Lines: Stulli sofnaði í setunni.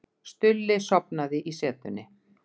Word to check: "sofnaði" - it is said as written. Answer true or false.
true